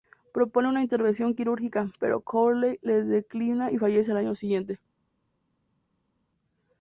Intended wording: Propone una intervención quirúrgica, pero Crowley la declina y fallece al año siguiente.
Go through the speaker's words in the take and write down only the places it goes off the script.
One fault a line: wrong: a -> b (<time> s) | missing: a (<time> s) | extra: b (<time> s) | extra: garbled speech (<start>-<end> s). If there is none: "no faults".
no faults